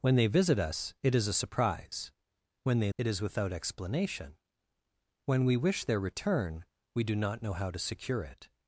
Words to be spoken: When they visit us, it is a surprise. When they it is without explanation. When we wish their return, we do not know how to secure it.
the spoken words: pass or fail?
pass